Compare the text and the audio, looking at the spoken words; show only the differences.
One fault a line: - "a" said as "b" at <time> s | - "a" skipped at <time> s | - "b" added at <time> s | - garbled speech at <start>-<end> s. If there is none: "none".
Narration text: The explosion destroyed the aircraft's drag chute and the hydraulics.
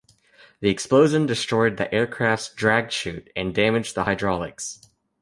- "damaged" added at 3.5 s